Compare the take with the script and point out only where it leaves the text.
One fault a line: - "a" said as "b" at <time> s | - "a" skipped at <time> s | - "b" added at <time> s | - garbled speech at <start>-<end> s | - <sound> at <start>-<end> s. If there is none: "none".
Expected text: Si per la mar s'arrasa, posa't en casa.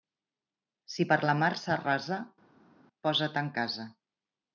none